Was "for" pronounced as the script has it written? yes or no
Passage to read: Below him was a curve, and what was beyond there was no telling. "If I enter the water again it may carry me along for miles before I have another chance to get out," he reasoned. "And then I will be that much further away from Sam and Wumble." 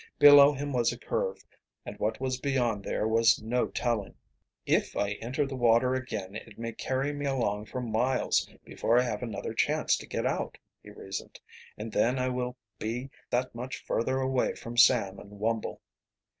yes